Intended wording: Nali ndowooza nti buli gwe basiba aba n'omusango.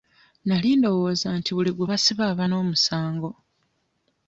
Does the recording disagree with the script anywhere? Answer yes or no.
no